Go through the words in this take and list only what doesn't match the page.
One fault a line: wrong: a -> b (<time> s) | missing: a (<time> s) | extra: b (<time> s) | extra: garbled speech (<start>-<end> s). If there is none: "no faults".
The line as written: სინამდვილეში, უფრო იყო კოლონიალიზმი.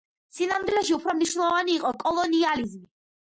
extra: მნიშვნელოვანი (1.2 s)